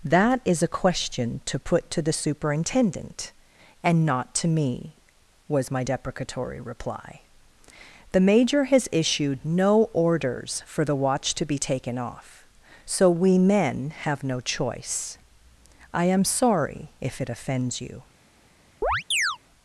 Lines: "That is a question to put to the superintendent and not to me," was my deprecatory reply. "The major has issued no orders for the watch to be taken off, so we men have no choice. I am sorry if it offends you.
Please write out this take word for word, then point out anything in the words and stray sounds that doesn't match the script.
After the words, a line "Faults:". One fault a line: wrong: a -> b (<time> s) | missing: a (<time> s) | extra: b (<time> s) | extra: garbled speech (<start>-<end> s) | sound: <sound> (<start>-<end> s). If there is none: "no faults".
"That is a question to put to the superintendent and not to me," was my deprecatory reply. "The major has issued no orders for the watch to be taken off, so we men have no choice. I am sorry if it offends you.
Faults:
sound: chirp (18.8-19.4 s)